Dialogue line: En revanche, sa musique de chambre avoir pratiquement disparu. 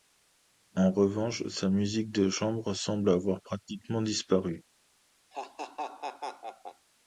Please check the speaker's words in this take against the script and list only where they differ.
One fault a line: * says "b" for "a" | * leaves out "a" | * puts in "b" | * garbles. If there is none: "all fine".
* puts in "semble"